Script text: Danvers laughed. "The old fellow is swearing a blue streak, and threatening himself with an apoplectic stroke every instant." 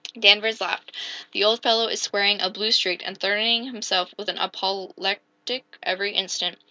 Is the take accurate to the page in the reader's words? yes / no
no